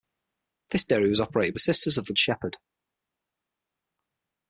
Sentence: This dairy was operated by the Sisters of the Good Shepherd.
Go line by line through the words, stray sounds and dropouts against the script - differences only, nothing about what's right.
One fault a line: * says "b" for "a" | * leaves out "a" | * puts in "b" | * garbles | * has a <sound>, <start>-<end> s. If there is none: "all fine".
* leaves out "by"
* leaves out "Good"